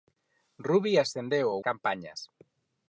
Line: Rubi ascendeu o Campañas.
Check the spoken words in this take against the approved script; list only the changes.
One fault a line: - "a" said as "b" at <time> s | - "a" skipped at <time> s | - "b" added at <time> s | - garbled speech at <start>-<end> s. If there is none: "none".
none